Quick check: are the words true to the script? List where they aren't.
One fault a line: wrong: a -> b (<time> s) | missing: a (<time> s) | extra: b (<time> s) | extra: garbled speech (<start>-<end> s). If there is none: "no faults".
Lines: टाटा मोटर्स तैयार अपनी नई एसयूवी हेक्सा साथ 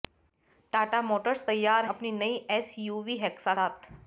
no faults